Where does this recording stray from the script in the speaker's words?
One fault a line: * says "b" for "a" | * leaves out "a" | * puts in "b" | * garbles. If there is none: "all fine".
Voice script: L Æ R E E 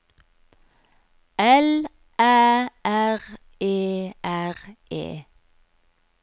* puts in "R"